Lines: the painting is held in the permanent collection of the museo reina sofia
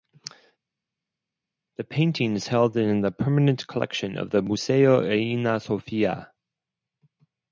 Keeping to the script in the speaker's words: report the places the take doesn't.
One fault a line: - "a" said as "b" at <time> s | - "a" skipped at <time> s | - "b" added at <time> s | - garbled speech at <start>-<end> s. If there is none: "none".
none